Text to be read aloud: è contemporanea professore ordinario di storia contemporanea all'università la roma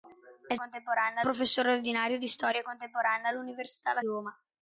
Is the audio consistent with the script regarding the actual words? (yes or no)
yes